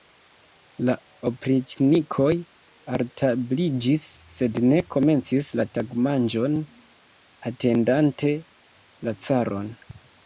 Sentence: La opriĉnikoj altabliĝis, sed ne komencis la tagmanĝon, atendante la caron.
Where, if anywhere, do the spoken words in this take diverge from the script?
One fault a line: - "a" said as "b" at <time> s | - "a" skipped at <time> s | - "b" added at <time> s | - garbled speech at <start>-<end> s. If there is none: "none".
none